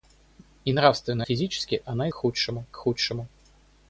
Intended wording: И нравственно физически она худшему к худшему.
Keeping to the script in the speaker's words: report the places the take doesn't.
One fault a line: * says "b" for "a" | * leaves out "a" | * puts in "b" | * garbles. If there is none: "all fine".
all fine